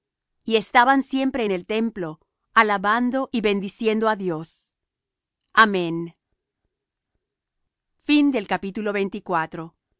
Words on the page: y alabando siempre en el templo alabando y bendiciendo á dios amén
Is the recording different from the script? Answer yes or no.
yes